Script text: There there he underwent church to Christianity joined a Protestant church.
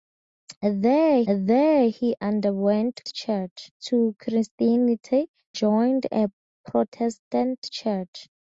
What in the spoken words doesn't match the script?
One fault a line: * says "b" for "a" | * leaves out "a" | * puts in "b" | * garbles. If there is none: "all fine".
all fine